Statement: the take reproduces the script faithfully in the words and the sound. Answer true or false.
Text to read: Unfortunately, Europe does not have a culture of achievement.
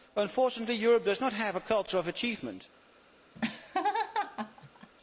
false